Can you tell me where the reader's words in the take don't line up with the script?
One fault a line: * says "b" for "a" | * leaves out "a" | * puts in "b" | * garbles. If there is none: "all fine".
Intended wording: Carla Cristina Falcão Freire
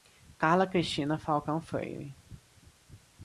all fine